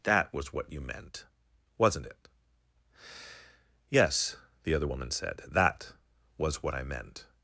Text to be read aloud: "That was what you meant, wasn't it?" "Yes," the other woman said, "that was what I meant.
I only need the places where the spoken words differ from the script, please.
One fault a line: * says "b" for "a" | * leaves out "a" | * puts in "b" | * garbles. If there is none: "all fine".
all fine